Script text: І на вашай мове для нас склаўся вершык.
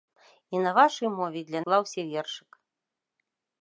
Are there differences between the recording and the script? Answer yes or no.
yes